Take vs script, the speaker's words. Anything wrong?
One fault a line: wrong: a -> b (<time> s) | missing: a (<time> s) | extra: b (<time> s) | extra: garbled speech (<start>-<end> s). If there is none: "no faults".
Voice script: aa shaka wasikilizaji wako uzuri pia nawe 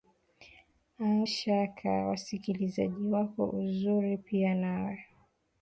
no faults